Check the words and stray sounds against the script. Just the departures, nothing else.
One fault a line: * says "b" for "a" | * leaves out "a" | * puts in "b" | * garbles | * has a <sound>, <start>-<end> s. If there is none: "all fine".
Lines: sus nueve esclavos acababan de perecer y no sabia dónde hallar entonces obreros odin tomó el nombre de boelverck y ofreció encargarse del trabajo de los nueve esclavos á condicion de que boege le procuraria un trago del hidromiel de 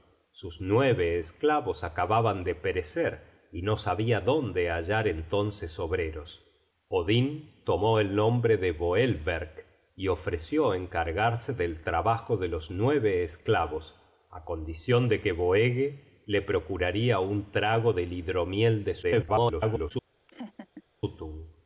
* garbles
* has a laugh, 20.3-20.8 s